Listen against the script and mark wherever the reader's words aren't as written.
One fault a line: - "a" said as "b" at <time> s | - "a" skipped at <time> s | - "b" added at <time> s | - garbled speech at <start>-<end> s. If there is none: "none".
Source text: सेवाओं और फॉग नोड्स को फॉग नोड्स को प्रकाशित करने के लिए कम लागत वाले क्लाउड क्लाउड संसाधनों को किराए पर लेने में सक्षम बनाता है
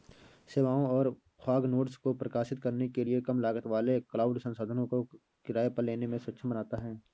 - "फॉग नोड्स को" skipped at 2.1 s
- "क्लाउड" skipped at 4.4 s